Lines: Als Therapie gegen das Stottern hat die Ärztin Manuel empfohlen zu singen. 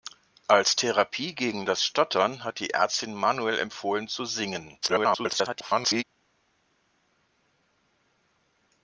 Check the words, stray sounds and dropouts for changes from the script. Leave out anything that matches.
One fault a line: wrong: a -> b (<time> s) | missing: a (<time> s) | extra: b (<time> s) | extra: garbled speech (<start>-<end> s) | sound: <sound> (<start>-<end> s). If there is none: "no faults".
extra: garbled speech (4.8-6.0 s)